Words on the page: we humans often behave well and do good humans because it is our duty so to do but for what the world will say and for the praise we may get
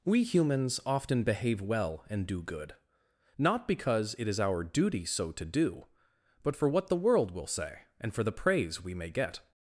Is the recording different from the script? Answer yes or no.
yes